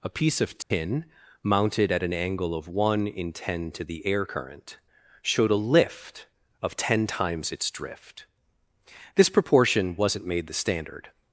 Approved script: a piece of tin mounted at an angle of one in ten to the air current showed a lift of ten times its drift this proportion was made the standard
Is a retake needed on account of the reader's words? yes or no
yes